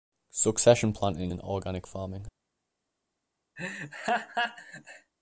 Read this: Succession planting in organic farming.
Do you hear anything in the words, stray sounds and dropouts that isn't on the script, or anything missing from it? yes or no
yes